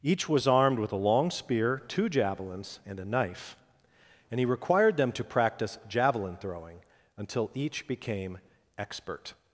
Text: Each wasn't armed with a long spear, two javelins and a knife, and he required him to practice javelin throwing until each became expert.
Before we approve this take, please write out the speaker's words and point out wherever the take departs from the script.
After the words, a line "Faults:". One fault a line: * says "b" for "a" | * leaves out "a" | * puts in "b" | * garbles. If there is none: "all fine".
Each was armed with a long spear, two javelins and a knife, and he required them to practice javelin throwing until each became expert.
Faults:
* says "was" for "wasn't"
* says "them" for "him"